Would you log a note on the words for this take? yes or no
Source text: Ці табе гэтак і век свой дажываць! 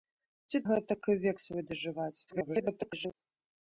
yes